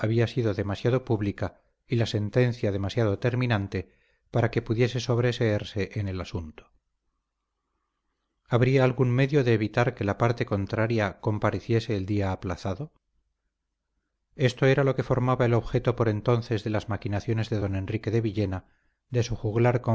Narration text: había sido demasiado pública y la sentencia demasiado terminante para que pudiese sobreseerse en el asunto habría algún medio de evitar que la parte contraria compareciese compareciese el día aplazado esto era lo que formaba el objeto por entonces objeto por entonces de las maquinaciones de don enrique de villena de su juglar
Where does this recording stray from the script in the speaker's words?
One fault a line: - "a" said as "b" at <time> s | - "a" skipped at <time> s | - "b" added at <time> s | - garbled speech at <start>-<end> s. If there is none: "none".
- "compareciese" skipped at 11.9 s
- "objeto por entonces" skipped at 16.6 s